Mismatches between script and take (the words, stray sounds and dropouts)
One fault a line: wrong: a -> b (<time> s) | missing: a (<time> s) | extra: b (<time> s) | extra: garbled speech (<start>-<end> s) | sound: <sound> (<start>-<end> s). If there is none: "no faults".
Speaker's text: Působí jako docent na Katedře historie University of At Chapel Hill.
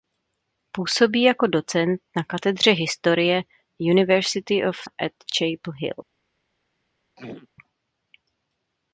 sound: throat clearing (7.2-7.5 s)